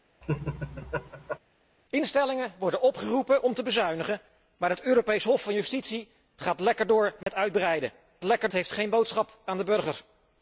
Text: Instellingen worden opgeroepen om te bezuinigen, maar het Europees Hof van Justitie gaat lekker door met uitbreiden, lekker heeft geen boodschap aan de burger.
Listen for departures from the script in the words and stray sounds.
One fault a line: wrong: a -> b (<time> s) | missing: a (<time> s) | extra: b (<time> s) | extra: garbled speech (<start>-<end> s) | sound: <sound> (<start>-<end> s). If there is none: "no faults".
sound: laugh (0.2-1.4 s)
sound: dropout (7.2-7.3 s)